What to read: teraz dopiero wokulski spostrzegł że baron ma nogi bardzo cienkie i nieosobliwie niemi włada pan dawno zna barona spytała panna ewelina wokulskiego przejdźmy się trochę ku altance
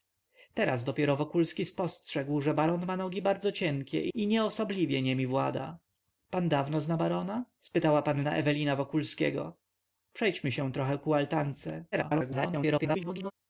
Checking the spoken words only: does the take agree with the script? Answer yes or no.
no